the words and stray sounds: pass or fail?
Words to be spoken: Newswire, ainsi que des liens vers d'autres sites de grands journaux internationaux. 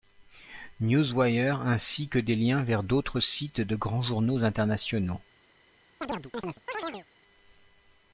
fail